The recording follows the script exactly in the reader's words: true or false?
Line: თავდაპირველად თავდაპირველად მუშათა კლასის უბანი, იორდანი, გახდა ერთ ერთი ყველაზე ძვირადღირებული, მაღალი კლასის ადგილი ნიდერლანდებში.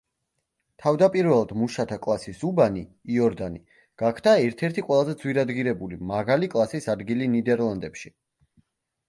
false